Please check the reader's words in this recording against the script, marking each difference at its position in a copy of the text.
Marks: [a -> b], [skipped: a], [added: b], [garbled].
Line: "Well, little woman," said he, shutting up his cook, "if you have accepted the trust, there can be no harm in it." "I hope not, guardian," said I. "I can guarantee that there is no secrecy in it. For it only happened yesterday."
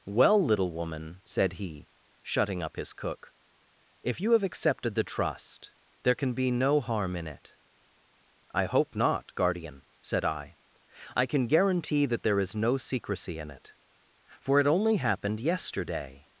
"Well, little woman," said he, shutting up his cook, "if you have accepted the trust, there can be no harm in it." "I hope not, guardian," said I. "I can guarantee that there is no secrecy in it. For it only happened yesterday."